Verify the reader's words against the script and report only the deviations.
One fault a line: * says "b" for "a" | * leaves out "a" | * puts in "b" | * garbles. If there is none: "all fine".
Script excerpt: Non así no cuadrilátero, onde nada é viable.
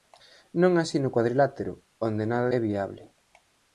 all fine